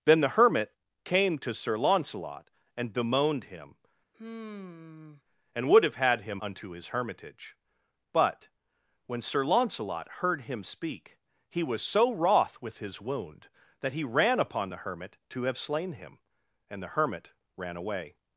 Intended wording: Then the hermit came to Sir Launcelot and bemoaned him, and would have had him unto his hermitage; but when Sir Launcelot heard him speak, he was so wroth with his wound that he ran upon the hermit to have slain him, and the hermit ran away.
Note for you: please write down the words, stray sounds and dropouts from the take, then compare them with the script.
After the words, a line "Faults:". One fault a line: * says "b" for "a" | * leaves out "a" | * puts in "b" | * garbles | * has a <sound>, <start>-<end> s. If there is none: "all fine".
Then the hermit came to Sir Launcelot and bemoaned him, and would have had him unto his hermitage; but when Sir Launcelot heard him speak, he was so wroth with his wound that he ran upon the hermit to have slain him, and the hermit ran away.
Faults:
* has a sigh, 4.1-5.2 s